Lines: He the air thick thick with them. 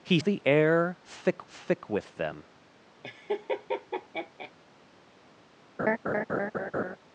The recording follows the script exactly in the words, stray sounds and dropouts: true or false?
false